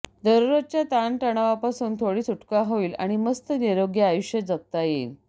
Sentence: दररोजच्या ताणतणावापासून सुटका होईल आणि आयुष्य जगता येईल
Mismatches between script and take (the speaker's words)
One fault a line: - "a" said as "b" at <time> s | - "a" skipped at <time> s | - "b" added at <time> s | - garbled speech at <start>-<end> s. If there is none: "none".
- "थोडी" added at 2.0 s
- "मस्त निरोगी" added at 3.2 s